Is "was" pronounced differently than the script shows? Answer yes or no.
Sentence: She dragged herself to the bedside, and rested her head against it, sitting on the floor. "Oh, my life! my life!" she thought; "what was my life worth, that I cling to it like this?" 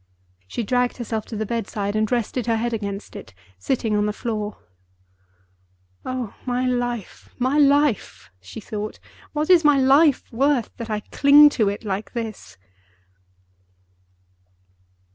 yes